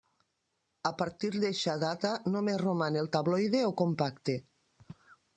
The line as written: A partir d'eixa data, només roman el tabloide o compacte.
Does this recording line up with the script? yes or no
yes